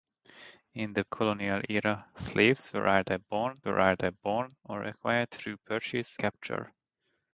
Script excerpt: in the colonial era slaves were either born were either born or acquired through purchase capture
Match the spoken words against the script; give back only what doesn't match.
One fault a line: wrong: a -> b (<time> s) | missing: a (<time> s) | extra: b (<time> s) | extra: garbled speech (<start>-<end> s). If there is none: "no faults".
no faults